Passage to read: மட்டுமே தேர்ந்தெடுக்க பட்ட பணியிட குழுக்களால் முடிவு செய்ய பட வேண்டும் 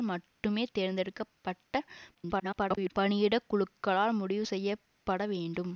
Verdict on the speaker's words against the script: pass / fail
fail